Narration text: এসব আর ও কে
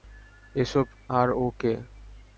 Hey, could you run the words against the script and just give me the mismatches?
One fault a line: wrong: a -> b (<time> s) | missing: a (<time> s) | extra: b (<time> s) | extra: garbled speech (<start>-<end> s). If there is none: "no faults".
no faults